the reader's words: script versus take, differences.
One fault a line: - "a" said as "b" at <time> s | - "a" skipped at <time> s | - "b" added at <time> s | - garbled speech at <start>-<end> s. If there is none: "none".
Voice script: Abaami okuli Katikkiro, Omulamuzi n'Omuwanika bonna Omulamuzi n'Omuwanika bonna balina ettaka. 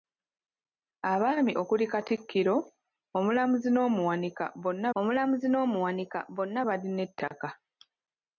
none